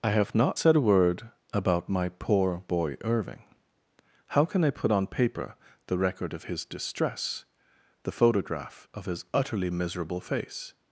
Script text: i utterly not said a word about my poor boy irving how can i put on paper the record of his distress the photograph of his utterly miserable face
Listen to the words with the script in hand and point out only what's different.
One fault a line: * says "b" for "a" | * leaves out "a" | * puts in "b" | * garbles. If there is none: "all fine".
* says "have" for "utterly"